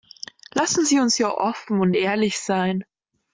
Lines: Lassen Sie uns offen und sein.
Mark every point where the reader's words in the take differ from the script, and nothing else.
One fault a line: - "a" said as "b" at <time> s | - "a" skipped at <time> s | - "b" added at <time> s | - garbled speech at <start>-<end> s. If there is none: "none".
- "hier" added at 1.1 s
- "ehrlich" added at 1.9 s